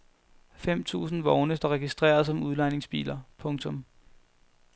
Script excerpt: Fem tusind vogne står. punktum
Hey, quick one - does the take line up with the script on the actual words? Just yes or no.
no